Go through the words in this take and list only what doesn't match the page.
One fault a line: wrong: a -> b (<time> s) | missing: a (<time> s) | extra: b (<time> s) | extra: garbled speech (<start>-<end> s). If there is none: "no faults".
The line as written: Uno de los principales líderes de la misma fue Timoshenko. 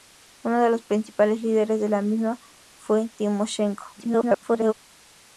extra: garbled speech (3.9-4.7 s)